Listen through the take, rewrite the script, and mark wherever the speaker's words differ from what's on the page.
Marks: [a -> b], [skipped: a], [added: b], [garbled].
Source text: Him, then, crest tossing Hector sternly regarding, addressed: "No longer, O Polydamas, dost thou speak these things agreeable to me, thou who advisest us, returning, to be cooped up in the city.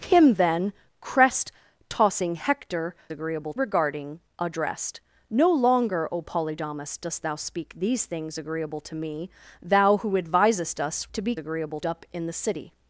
Him, then, crest tossing Hector [sternly -> agreeable] regarding, addressed: "No longer, O Polydamas, dost thou speak these things agreeable to me, thou who advisest us, [skipped: returning,] to be [cooped -> agreeable] up in the city.